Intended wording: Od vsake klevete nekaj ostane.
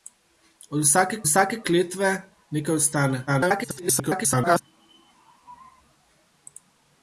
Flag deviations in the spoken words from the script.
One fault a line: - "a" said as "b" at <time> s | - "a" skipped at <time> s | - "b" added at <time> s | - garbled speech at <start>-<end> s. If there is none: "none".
- "vsake" added at 1.2 s
- garbled speech at 3.3-4.6 s